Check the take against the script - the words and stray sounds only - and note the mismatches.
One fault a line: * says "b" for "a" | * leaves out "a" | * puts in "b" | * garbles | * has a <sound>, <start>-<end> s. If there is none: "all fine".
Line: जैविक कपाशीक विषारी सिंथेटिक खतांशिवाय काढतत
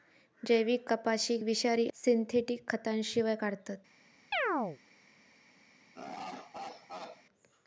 * has a chirp, 4.3-4.8 s
* has a laugh, 5.9-7.2 s